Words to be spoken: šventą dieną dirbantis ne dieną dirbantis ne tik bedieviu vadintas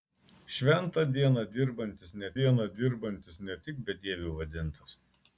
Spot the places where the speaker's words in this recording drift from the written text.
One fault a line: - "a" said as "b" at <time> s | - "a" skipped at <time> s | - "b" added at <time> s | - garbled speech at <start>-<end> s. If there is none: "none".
none